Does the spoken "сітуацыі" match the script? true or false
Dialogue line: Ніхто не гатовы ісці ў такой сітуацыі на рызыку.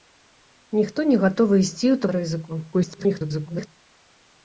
false